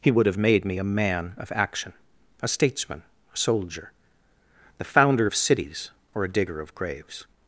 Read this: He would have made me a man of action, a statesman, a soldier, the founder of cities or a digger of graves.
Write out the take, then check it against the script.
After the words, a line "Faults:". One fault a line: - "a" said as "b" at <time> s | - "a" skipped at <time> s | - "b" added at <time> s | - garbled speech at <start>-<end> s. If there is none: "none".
He would have made me a man of action, a statesman, a soldier, the founder of cities or a digger of graves.
Faults:
none